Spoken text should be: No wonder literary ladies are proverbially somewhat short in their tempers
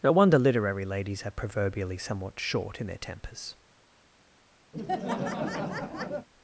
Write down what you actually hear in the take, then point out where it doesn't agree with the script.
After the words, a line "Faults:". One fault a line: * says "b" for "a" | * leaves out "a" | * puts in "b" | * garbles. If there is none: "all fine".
No wonder literary ladies are proverbially somewhat short in their tempers
Faults:
all fine